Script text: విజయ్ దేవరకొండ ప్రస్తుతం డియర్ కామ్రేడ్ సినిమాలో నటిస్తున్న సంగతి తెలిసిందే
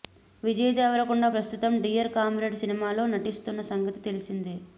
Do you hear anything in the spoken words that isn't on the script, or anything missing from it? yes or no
no